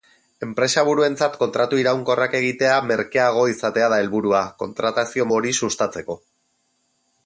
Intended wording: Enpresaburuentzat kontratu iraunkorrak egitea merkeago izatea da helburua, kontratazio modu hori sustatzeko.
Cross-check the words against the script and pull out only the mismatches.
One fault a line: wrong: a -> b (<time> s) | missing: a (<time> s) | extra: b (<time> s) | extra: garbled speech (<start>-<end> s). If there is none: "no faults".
missing: modu (5.3 s)